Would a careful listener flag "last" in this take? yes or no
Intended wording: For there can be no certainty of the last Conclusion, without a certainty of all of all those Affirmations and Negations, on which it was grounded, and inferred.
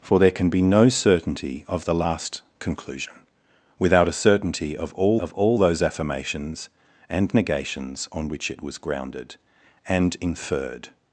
no